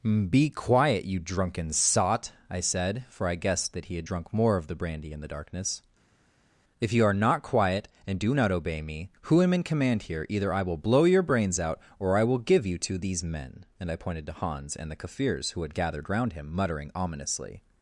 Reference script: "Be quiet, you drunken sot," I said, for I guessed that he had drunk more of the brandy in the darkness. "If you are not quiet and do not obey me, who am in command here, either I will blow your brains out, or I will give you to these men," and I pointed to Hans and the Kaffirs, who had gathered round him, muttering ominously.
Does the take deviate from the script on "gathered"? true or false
false